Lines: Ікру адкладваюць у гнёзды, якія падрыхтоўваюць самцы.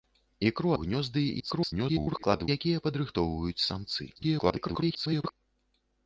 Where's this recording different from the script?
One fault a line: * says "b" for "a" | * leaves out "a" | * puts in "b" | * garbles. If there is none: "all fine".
* leaves out "адкладваюць"
* garbles
* garbles